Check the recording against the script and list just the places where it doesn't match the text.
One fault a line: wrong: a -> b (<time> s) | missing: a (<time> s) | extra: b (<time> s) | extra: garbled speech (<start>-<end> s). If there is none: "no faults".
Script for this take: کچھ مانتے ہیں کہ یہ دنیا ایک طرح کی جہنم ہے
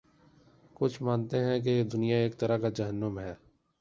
wrong: کی -> کا (2.6 s)